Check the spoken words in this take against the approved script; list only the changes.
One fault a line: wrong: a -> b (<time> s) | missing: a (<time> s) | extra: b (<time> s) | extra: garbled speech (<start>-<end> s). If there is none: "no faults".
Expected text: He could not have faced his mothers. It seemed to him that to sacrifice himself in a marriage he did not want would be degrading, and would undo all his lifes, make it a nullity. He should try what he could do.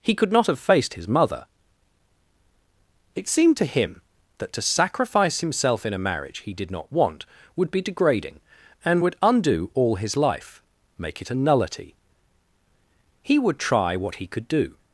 wrong: mothers -> mother (1.1 s)
wrong: lifes -> life (10.2 s)
wrong: should -> would (13.4 s)